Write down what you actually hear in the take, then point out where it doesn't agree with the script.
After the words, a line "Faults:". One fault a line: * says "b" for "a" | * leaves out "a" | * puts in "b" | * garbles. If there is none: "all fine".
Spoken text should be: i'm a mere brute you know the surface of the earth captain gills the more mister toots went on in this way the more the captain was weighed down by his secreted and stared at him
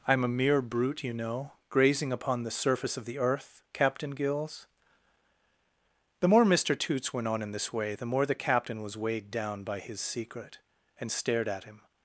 i'm a mere brute you know grazing upon the surface of the earth captain gills the more mister toots went on in this way the more the captain was weighed down by his secret and stared at him
Faults:
* puts in "grazing upon"
* says "secret" for "secreted"